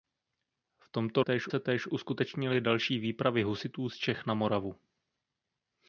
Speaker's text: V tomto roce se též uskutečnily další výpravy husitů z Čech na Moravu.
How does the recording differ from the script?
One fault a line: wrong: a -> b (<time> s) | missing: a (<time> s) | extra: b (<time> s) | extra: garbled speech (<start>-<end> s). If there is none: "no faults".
wrong: roce -> též (1.2 s)